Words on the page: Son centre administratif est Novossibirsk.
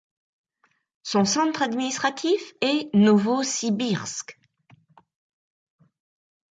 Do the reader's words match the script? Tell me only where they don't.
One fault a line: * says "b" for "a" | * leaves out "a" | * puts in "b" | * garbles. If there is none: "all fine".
all fine